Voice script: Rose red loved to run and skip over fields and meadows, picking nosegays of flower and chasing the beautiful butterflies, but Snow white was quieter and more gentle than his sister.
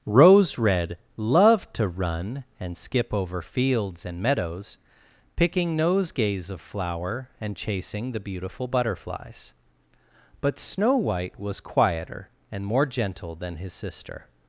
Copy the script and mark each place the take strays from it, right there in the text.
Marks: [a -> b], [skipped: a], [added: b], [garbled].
Rose red loved to run and skip over fields and meadows, picking nosegays of flower and chasing the beautiful butterflies, but Snow white was quieter and more gentle than his sister.